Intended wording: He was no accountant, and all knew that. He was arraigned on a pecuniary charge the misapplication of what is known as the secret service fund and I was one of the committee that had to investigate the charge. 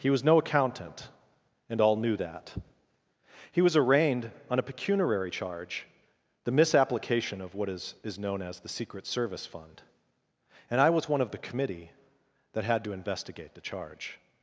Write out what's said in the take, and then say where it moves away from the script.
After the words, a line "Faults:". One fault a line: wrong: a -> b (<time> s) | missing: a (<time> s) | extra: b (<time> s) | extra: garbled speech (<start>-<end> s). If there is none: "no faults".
He was no accountant, and all knew that. He was arraigned on a pecuniary charge the misapplication of what is is known as the secret service fund and I was one of the committee that had to investigate the charge.
Faults:
extra: is (8.0 s)